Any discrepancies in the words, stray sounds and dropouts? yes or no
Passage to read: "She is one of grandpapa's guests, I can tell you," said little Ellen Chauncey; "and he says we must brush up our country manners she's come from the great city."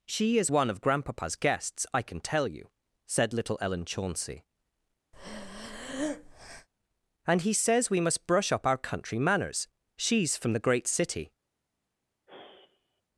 yes